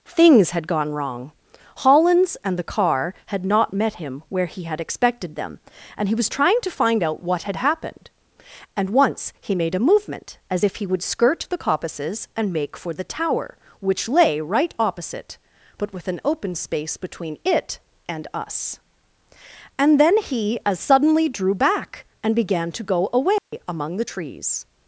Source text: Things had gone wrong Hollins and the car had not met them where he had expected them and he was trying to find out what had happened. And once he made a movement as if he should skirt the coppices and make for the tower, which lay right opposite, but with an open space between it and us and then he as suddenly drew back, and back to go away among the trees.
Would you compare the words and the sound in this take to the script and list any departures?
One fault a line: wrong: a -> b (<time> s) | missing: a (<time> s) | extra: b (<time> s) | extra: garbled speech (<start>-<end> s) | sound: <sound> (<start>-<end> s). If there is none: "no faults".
wrong: them -> him (4.0 s)
wrong: should -> would (10.9 s)
wrong: back -> began (22.3 s)
sound: dropout (23.4-23.5 s)